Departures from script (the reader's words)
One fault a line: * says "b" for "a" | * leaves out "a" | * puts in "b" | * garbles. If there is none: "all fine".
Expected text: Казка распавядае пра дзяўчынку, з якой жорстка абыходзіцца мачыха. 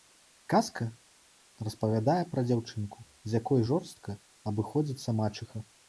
all fine